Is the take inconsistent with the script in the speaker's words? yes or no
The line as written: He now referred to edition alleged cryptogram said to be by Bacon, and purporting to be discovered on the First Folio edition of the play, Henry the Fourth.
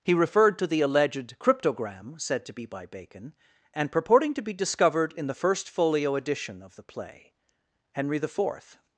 yes